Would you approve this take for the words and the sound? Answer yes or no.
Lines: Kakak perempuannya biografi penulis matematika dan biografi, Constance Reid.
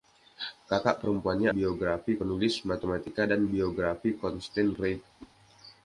no